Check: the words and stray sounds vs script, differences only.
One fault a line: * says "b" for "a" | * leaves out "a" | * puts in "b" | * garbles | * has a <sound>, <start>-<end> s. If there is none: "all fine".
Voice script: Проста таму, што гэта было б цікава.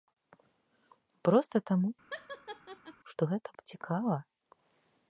* has a laugh, 2.1-3.0 s
* leaves out "было"